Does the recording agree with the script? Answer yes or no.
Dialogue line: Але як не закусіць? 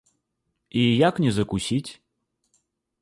no